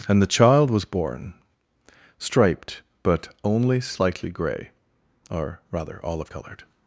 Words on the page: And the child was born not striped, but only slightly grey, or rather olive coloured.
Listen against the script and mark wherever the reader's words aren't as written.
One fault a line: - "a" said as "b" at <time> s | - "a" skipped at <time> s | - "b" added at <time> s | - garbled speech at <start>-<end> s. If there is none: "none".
- "not" skipped at 1.3 s